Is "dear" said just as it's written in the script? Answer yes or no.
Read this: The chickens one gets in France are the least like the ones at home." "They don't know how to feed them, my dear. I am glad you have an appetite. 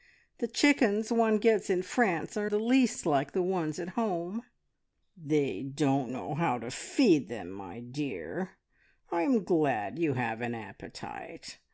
yes